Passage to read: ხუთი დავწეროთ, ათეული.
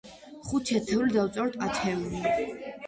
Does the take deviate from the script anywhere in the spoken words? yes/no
yes